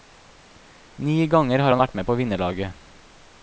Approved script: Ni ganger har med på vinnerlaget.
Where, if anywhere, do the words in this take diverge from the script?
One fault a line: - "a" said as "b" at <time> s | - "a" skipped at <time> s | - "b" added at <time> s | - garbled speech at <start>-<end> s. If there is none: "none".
- "han vært" added at 1.7 s